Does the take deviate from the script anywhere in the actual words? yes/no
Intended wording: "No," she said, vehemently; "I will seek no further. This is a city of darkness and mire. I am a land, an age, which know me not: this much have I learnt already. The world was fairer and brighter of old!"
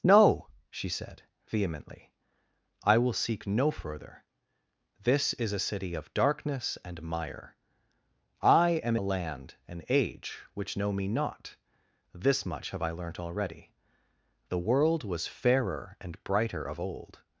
no